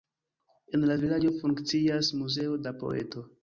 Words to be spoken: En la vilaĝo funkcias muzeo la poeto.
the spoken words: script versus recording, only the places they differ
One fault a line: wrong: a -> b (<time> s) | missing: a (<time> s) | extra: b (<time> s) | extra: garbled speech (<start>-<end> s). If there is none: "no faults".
no faults